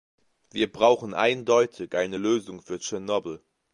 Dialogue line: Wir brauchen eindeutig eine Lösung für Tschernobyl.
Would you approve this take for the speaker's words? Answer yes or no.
yes